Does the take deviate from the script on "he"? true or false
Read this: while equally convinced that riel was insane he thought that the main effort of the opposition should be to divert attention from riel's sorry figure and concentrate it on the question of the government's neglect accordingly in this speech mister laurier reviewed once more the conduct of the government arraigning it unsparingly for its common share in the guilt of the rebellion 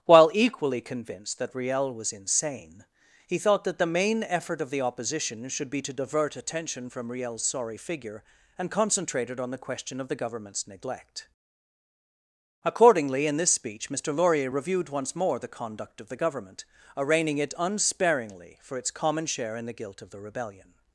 false